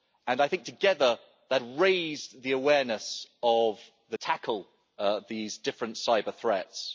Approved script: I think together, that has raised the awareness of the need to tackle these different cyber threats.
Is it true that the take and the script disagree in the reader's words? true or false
true